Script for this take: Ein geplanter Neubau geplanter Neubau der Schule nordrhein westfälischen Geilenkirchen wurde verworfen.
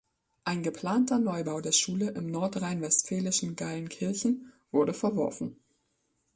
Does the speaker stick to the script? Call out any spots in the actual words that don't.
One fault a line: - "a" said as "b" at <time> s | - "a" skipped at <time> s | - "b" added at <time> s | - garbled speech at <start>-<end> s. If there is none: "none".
- "geplanter Neubau" skipped at 1.6 s
- "im" added at 2.1 s